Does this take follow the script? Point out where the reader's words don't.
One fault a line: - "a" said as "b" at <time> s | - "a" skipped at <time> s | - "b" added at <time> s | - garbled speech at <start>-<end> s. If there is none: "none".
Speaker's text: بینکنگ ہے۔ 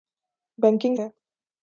none